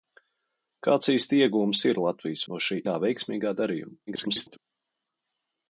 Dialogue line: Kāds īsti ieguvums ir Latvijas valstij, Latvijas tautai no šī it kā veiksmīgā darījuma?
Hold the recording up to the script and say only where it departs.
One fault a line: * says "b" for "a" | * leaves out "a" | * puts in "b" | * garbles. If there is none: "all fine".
* leaves out "valstij Latvijas tautai"
* leaves out "it"
* garbles